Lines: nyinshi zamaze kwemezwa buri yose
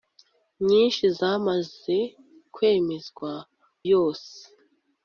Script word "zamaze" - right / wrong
right